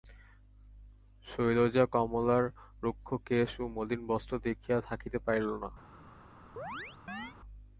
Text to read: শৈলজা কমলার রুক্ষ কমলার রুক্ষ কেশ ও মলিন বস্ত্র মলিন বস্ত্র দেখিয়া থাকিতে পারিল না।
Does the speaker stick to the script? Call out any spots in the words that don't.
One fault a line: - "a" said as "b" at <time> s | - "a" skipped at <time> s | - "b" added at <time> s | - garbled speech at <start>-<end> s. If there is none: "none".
- "কমলার রুক্ষ" skipped at 3.1 s
- "মলিন বস্ত্র" skipped at 4.3 s